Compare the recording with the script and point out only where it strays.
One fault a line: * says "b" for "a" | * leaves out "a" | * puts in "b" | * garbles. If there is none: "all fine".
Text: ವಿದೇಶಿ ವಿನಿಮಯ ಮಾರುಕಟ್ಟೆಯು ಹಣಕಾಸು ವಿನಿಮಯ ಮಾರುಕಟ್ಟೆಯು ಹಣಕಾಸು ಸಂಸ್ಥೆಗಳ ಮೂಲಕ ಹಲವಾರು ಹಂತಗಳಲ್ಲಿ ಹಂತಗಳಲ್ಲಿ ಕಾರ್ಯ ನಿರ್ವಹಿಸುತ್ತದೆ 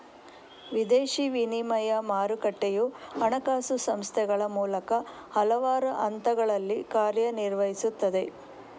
* leaves out "ವಿನಿಮಯ ಮಾರುಕಟ್ಟೆಯು ಹಣಕಾಸು"
* leaves out "ಹಂತಗಳಲ್ಲಿ"